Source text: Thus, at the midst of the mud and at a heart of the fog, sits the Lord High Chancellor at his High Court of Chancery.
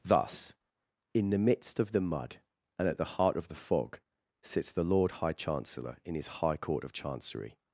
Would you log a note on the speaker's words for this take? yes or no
yes